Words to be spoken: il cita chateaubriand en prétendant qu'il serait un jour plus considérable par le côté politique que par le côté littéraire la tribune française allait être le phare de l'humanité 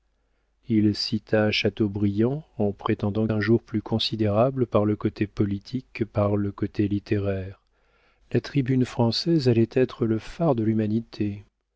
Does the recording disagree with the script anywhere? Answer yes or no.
yes